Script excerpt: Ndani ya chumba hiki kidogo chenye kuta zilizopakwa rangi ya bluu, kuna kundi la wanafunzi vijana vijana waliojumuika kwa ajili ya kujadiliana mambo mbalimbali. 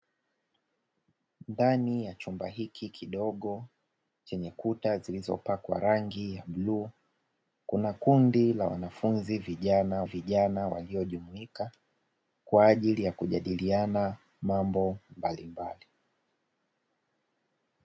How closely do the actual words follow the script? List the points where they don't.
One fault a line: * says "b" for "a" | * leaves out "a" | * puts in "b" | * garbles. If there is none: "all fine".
all fine